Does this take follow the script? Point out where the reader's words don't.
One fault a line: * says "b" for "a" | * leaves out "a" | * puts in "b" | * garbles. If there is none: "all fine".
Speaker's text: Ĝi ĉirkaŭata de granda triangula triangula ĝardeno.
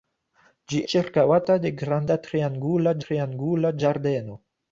all fine